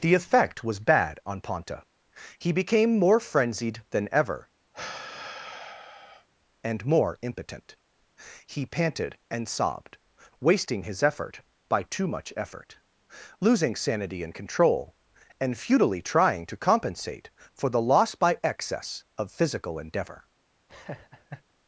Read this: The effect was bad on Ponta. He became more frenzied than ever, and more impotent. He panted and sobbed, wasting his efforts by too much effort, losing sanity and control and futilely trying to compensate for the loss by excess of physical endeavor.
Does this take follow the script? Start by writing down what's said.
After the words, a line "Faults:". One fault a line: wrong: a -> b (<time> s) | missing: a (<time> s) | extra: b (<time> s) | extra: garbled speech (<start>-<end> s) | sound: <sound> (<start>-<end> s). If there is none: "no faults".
The effect was bad on Ponta. He became more frenzied than ever, and more impotent. He panted and sobbed, wasting his effort by too much effort, losing sanity and control and futilely trying to compensate for the loss by excess of physical endeavor.
Faults:
sound: sigh (4.7-6.3 s)
wrong: efforts -> effort (11.0 s)
sound: laugh (20.7-21.4 s)